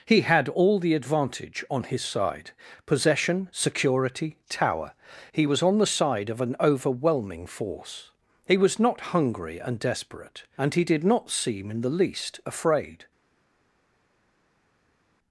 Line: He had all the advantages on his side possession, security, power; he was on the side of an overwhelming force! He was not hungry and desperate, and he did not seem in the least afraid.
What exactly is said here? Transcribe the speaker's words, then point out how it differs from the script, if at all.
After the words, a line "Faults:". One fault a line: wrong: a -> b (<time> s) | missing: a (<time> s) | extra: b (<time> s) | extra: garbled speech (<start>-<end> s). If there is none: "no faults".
He had all the advantage on his side possession, security, tower; he was on the side of an overwhelming force! He was not hungry and desperate, and he did not seem in the least afraid.
Faults:
wrong: advantages -> advantage (0.9 s)
wrong: power -> tower (4.5 s)